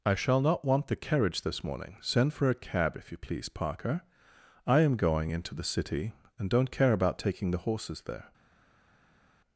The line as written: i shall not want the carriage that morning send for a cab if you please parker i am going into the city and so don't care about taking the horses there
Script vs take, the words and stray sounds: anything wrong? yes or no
yes